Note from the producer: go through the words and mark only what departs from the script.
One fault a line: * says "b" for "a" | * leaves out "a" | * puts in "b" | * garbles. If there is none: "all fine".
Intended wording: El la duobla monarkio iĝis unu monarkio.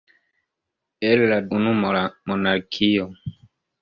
* leaves out "duobla monarkio iĝis"